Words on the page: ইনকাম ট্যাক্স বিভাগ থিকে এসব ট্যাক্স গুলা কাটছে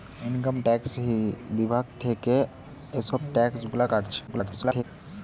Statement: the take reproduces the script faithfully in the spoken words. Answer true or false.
false